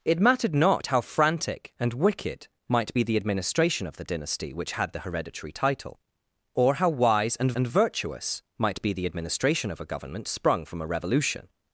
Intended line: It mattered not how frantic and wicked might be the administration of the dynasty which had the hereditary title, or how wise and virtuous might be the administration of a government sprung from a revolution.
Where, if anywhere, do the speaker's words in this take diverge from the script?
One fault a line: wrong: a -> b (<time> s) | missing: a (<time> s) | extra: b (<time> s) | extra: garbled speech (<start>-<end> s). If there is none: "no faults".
extra: and (7.5 s)